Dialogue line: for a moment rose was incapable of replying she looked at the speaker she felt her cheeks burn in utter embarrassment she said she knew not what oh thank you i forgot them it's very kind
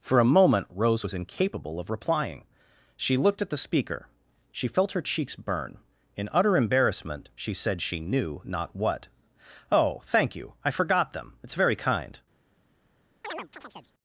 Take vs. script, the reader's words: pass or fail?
pass